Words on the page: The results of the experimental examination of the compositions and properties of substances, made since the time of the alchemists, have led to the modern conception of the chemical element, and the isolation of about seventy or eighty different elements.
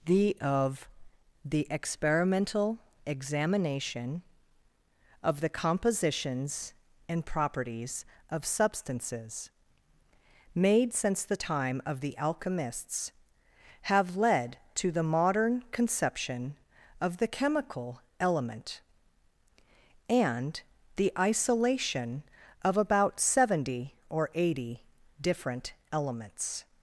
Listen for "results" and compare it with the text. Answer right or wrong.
wrong